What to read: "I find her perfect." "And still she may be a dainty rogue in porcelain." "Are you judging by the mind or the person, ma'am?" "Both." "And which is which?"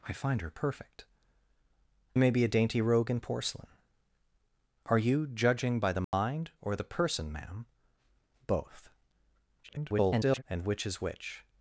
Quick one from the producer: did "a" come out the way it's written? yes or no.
yes